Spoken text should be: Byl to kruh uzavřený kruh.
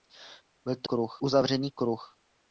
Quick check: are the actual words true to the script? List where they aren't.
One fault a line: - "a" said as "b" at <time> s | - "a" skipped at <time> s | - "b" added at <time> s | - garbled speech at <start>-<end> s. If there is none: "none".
none